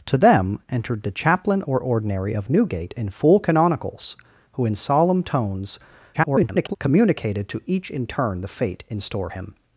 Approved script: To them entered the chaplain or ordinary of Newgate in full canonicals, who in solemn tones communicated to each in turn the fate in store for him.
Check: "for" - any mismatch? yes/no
yes